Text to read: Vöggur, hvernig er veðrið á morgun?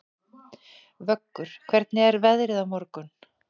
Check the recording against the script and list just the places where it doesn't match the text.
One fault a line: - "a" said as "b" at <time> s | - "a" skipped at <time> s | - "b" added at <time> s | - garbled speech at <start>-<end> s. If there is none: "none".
none